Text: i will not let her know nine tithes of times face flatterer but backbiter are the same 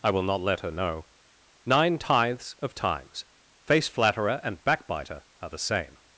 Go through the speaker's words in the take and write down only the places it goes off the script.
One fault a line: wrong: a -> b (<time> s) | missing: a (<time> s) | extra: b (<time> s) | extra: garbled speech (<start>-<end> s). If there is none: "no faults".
wrong: but -> and (4.4 s)